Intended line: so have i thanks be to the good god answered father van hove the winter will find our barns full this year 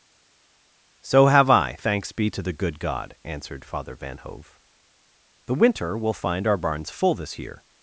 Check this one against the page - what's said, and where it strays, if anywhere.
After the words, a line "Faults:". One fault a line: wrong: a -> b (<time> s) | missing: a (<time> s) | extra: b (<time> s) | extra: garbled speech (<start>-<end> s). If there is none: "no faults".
so have i thanks be to the good god answered father van hove the winter will find our barns full this year
Faults:
no faults